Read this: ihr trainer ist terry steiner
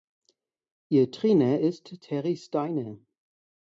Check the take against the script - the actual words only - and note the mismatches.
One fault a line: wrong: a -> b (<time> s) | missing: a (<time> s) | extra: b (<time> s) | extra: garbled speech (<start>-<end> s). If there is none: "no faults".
no faults